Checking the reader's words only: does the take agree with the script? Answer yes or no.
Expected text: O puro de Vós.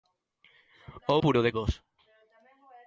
yes